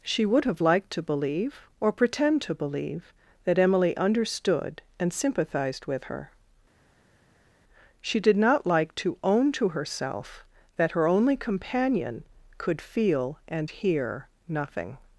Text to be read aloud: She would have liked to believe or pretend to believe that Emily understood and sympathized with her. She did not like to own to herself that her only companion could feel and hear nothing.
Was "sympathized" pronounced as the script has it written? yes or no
yes